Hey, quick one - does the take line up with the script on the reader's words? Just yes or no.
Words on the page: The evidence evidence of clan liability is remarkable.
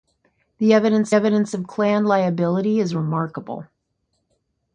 yes